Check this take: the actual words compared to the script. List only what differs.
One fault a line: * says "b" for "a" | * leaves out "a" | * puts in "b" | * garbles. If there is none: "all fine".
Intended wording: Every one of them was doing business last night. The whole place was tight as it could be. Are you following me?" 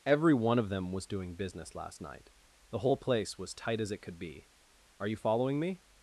all fine